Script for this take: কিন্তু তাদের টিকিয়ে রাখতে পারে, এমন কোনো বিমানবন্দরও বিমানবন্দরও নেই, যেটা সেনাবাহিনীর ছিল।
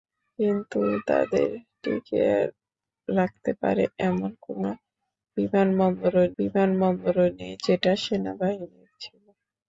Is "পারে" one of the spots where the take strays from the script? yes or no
no